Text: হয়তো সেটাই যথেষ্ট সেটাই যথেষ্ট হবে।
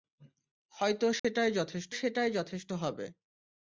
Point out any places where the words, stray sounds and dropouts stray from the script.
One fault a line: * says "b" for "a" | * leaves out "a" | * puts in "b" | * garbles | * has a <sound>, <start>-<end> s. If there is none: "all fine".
* has a dropout, 1.2-1.2 s